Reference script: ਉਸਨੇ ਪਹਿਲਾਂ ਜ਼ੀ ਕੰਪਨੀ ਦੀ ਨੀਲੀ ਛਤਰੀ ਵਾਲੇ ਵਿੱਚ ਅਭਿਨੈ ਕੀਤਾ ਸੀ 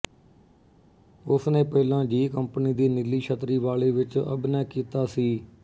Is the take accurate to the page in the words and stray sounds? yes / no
yes